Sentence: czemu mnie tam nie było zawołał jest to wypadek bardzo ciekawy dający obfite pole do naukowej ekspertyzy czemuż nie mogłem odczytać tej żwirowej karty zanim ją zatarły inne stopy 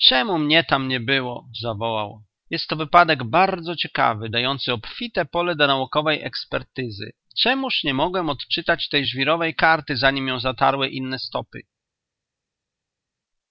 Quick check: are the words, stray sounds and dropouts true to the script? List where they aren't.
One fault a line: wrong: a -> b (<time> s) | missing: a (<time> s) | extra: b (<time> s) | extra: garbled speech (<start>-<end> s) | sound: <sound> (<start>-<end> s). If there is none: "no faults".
no faults